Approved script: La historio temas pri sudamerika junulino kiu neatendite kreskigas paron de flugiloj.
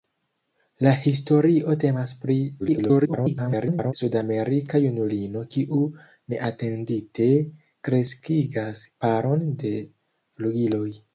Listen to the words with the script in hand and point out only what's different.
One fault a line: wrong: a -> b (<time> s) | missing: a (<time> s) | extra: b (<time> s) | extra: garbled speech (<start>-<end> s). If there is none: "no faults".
extra: garbled speech (2.6-3.9 s)